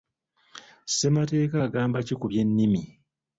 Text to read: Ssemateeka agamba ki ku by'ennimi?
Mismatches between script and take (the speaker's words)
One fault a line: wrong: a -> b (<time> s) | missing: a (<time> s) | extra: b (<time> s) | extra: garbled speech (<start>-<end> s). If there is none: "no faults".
no faults